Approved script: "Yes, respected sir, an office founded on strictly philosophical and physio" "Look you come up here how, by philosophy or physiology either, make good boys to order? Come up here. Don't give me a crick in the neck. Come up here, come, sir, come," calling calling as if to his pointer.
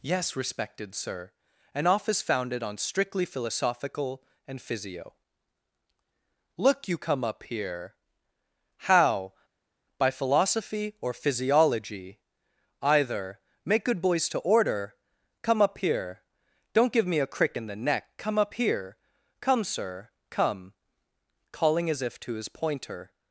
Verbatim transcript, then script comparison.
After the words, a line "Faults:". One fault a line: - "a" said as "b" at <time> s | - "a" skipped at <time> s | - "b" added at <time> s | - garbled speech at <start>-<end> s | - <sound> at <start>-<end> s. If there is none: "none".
"Yes, respected sir, an office founded on strictly philosophical and physio" "Look you come up here how, by philosophy or physiology either, make good boys to order? Come up here. Don't give me a crick in the neck. Come up here, come, sir, come," calling as if to his pointer.
Faults:
- "calling" skipped at 21.9 s